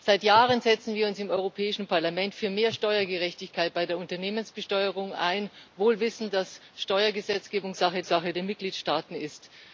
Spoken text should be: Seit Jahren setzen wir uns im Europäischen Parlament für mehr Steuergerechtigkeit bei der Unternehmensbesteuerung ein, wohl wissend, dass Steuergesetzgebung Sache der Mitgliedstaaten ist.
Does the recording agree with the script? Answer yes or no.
no